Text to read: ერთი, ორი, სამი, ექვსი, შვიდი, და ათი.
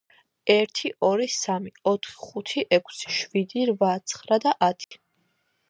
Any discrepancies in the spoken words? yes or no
yes